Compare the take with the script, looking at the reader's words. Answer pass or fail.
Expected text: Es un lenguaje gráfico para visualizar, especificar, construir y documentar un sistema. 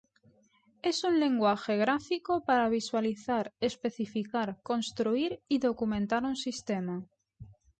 pass